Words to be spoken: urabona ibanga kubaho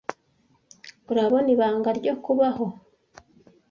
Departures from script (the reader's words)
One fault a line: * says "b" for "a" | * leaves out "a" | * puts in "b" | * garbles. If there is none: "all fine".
* puts in "ryo"